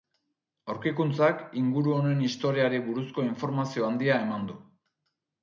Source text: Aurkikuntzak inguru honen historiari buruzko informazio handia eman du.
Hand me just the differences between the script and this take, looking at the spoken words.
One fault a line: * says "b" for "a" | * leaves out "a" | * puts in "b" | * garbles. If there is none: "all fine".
all fine